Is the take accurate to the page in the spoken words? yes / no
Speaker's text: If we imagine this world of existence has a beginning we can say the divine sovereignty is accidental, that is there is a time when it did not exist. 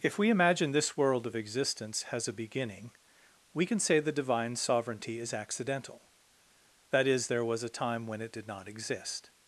no